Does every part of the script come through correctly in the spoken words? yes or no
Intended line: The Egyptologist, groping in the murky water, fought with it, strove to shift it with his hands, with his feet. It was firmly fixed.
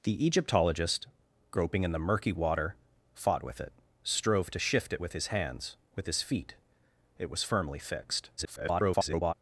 no